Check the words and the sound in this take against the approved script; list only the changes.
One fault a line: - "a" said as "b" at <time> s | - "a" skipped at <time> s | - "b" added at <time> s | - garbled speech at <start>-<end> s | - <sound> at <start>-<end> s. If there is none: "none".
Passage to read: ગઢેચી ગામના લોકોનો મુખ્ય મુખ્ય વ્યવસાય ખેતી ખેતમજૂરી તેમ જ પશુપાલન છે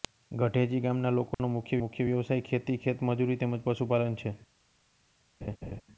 - dropout at 1.3-1.4 s
- laugh at 5.4-5.8 s